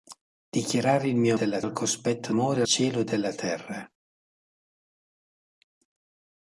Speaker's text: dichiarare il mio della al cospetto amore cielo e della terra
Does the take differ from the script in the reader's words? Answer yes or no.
no